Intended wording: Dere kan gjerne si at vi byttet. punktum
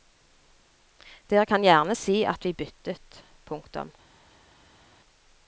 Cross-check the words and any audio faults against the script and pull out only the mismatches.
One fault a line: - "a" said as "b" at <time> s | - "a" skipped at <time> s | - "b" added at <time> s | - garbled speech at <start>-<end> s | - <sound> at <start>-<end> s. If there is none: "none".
none